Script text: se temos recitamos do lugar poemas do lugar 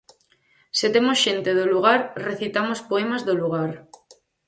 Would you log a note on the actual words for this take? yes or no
yes